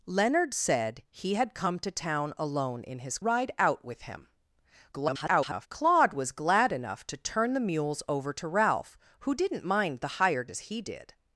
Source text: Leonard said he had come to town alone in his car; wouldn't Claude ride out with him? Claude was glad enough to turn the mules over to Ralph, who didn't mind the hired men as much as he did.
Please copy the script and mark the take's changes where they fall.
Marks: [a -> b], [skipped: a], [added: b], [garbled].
Leonard said he had come to town alone in his [skipped: car; wouldn't Claude] ride out with him? [garbled] Claude was glad enough to turn the mules over to Ralph, who didn't mind the hired [skipped: men as much] as he did.